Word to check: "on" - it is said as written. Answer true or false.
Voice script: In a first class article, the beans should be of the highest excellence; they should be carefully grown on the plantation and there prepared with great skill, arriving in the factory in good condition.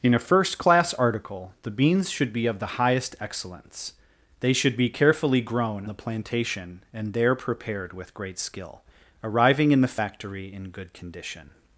false